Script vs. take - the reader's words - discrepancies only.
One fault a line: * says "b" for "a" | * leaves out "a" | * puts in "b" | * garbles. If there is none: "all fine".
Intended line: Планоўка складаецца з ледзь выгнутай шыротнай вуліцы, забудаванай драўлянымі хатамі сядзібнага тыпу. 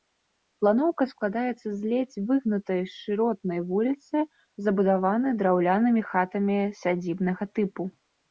all fine